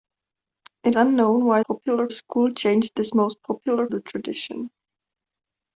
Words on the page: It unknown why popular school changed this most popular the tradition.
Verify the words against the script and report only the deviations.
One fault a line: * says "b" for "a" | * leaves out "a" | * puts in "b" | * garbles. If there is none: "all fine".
all fine